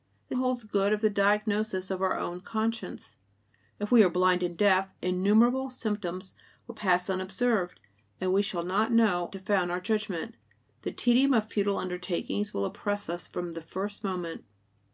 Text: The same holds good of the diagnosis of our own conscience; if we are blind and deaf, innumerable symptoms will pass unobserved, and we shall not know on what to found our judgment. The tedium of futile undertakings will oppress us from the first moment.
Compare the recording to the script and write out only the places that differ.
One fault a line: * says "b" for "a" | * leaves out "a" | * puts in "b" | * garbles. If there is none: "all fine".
* leaves out "same"
* leaves out "on what"